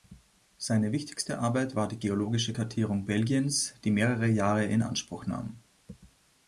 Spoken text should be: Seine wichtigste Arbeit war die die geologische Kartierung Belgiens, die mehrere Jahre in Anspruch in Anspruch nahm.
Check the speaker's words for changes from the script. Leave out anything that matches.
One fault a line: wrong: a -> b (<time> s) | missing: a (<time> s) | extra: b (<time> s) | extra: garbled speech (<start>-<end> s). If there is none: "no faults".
missing: die (2.0 s)
missing: in Anspruch (5.3 s)